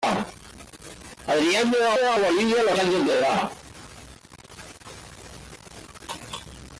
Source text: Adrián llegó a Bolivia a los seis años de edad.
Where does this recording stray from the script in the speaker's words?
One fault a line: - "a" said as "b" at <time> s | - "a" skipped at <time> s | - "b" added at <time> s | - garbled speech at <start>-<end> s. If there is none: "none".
- "llegó a" added at 1.9 s
- "seis" skipped at 2.8 s